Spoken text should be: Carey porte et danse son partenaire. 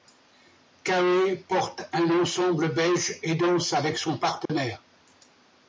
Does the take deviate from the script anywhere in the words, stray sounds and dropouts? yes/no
yes